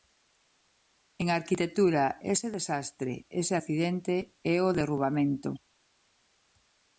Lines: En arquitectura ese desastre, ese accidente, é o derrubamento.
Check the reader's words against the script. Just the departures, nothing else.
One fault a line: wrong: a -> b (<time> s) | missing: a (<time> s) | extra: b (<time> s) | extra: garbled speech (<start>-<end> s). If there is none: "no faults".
no faults